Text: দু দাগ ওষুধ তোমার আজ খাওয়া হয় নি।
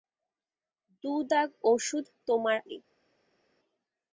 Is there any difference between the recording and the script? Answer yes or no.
yes